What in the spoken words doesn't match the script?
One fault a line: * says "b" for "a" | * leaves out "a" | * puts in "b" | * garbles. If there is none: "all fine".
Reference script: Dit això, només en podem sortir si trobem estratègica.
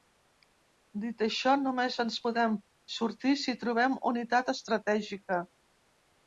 * puts in "ens"
* puts in "unitat"